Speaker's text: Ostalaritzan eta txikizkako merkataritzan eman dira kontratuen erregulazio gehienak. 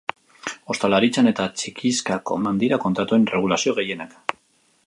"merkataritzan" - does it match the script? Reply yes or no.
no